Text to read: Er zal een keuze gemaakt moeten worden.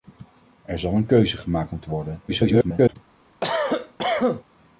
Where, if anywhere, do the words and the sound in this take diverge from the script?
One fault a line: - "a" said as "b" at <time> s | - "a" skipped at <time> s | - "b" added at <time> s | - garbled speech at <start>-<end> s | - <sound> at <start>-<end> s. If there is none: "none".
- garbled speech at 2.3-3.0 s
- cough at 3.4-4.4 s